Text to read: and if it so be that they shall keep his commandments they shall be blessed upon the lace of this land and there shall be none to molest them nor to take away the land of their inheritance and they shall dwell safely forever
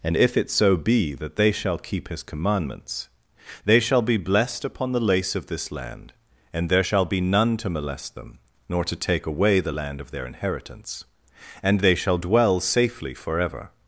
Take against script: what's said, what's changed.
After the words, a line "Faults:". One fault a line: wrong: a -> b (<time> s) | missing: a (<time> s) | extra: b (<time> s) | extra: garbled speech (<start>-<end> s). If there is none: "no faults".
and if it so be that they shall keep his commandments they shall be blessed upon the lace of this land and there shall be none to molest them nor to take away the land of their inheritance and they shall dwell safely forever
Faults:
no faults